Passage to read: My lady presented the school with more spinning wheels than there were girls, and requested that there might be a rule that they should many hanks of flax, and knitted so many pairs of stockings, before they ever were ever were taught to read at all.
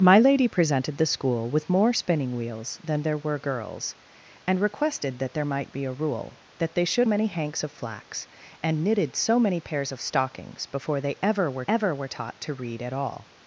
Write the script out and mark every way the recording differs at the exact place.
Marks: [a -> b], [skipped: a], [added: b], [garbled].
My lady presented the school with more spinning wheels than there were girls, and requested that there might be a rule that they should many hanks of flax, and knitted so many pairs of stockings, before they ever were ever were taught to read at all.